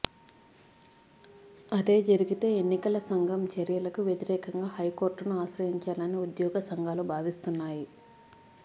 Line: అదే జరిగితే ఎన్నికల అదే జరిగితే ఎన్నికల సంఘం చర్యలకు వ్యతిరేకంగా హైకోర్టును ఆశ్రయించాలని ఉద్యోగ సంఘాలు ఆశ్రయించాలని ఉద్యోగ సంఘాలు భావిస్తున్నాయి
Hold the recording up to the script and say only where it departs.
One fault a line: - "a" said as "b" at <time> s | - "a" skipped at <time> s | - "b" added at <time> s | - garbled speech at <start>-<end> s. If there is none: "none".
- "అదే జరిగితే ఎన్నికల" skipped at 3.0 s
- "ఆశ్రయించాలని ఉద్యోగ సంఘాలు" skipped at 7.0 s